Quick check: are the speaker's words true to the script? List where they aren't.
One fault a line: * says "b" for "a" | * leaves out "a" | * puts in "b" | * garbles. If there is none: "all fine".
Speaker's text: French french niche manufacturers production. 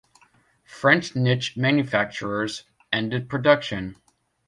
* leaves out "french"
* puts in "ended"